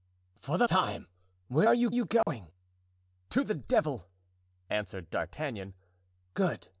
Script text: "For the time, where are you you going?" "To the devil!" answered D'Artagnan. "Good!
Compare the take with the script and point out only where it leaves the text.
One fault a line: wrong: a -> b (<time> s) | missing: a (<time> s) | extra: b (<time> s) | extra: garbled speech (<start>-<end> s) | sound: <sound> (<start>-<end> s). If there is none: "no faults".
sound: dropout (2.2-2.3 s)